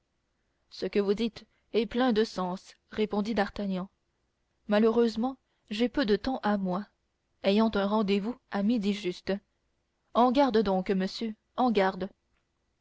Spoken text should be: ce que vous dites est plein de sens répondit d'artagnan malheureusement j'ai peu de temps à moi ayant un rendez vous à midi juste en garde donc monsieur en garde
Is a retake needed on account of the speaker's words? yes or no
no